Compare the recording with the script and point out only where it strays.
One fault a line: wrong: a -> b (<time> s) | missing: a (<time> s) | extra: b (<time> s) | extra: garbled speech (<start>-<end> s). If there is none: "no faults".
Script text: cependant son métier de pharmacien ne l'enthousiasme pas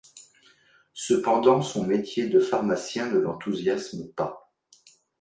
no faults